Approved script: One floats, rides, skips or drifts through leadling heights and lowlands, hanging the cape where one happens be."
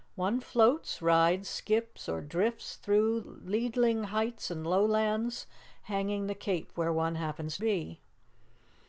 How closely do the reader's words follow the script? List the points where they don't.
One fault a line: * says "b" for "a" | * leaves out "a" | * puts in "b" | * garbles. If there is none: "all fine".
all fine